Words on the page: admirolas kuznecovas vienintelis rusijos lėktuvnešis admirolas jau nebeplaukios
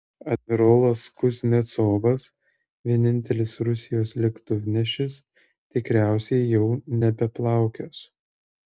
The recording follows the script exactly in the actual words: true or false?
false